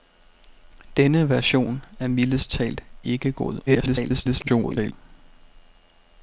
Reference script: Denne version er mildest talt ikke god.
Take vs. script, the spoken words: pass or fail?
fail